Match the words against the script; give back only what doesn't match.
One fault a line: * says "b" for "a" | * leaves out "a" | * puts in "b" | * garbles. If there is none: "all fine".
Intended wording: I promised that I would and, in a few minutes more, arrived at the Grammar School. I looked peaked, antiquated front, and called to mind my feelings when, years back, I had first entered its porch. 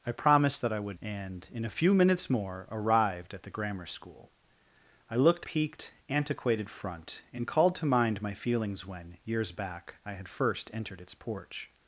all fine